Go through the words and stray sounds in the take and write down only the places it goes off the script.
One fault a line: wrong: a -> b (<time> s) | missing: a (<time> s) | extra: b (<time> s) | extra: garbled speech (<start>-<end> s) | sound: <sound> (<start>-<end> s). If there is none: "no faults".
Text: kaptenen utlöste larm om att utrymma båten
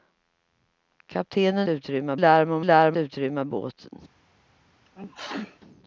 wrong: utlöste -> utrymma (1.7 s)
wrong: att -> larm (2.6 s)
sound: sneeze (4.9-5.6 s)